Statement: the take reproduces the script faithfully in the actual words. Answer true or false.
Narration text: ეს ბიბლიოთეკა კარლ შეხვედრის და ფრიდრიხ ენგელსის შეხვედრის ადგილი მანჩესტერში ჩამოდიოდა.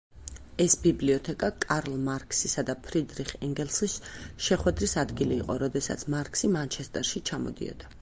false